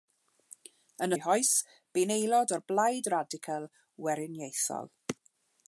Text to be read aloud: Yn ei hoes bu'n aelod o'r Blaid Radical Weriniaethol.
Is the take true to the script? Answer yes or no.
yes